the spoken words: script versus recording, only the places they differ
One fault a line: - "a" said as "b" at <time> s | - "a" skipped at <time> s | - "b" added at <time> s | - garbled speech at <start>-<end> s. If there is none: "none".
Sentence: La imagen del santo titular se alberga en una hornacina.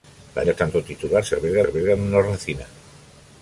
- "imagen" skipped at 0.4 s
- "alberga" added at 1.7 s